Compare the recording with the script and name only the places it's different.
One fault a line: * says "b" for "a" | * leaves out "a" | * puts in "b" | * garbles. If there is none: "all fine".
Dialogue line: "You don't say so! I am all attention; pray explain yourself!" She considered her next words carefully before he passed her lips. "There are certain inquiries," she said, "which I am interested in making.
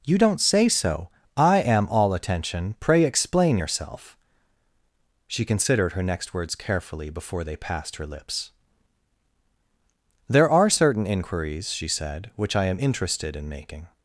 * says "they" for "he"